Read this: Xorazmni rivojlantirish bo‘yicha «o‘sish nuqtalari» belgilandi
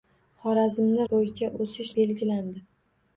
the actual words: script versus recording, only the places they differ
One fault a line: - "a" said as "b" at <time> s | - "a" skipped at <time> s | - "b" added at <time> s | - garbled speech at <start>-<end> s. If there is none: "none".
- "rivojlantirish" skipped at 1.0 s
- "nuqtalari" skipped at 1.9 s